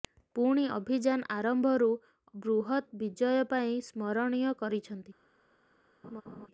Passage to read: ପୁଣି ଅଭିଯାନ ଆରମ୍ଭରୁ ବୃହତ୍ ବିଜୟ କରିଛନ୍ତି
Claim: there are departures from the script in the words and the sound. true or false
true